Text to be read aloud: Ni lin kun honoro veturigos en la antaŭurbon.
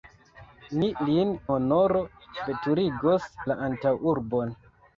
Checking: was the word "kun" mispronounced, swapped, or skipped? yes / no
yes